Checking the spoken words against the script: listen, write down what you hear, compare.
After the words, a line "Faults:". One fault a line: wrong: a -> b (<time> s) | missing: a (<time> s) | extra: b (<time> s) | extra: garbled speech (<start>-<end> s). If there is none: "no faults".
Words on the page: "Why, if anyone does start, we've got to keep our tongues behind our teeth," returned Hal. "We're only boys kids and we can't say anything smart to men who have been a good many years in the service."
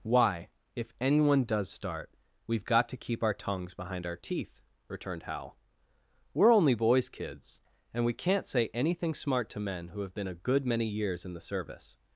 "Why, if anyone does start, we've got to keep our tongues behind our teeth," returned Hal. "We're only boys kids and we can't say anything smart to men who have been a good many years in the service."
Faults:
no faults